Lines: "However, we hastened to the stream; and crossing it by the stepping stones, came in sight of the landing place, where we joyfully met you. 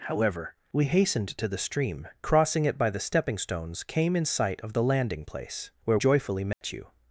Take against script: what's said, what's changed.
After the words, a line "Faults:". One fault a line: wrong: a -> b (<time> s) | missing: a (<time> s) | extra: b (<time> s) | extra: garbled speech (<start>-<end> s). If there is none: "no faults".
"However, we hastened to the stream; crossing it by the stepping stones, came in sight of the landing place, where joyfully met you.
Faults:
missing: and (2.1 s)
missing: we (6.0 s)